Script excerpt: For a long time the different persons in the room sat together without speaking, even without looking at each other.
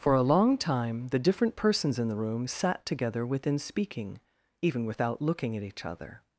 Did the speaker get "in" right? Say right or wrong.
right